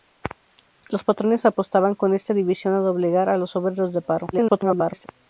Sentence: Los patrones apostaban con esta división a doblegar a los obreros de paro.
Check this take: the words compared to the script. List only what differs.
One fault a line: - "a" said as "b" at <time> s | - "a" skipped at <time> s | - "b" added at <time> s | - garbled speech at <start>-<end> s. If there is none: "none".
- garbled speech at 4.3-5.1 s